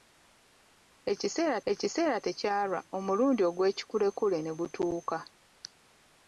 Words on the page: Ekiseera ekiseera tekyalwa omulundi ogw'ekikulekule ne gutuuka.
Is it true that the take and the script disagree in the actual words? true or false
false